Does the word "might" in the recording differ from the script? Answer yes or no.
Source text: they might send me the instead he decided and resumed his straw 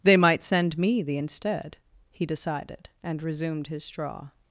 no